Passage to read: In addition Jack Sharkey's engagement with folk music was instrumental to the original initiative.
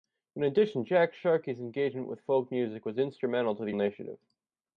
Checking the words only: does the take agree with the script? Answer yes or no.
no